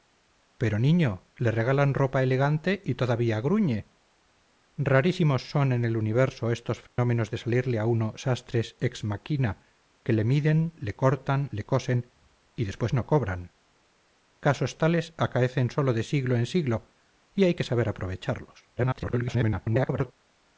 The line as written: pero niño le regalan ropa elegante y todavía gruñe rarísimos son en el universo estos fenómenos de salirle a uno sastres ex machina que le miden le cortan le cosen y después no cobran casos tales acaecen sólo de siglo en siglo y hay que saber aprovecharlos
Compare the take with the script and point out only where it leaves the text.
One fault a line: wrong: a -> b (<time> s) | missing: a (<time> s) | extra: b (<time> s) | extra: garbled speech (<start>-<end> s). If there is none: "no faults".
extra: garbled speech (18.8-20.1 s)